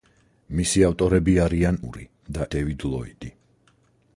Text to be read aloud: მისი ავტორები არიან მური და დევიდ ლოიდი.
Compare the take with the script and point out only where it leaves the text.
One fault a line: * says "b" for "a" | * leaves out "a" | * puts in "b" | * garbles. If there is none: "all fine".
all fine